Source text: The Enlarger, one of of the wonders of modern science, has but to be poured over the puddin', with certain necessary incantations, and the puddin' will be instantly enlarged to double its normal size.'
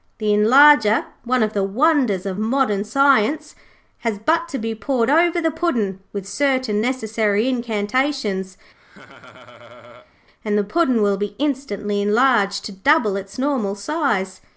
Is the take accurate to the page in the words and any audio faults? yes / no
no